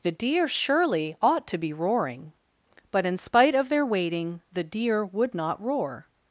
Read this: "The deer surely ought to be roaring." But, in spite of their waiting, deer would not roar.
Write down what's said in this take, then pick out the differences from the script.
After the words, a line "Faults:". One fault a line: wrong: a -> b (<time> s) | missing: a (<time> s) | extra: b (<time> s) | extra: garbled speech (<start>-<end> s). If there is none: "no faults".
"The deer surely ought to be roaring." But, in spite of their waiting, the deer would not roar.
Faults:
extra: the (4.5 s)